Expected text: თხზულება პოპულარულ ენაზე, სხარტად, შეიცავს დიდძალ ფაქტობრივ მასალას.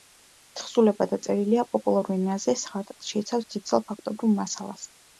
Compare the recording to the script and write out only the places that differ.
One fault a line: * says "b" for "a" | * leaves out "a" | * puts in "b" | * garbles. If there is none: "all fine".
* puts in "დაწერილია"